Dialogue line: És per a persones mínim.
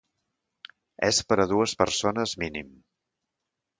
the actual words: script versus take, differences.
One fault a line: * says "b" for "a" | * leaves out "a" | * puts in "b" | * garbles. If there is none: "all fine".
* puts in "dues"